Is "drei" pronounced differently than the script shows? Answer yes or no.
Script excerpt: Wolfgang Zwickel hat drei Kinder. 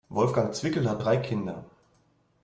no